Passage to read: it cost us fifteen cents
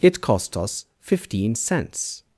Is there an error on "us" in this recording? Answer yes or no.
no